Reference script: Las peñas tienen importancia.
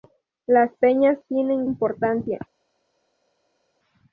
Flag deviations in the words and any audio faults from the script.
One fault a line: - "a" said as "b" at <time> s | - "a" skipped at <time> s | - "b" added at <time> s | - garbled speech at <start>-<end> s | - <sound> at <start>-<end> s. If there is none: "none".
none